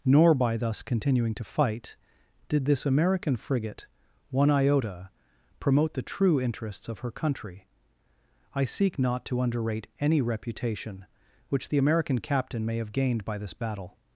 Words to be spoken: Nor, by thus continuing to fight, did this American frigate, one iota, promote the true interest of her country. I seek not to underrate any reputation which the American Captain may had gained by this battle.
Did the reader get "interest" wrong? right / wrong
wrong